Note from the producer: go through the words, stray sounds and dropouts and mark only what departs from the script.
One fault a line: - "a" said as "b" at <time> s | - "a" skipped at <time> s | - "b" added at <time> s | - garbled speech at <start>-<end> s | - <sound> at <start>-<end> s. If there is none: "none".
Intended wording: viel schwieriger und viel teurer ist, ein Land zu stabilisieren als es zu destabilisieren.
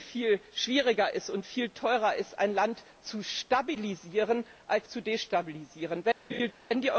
- "es" skipped at 4.9 s
- laugh at 6.3-6.5 s